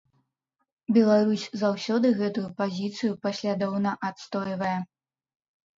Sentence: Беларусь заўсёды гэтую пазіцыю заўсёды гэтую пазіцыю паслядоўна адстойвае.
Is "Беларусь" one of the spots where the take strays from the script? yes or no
no